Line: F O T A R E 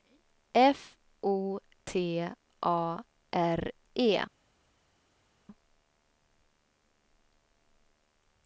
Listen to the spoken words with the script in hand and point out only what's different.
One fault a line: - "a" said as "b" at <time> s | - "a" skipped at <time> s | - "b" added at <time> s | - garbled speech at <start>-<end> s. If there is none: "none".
none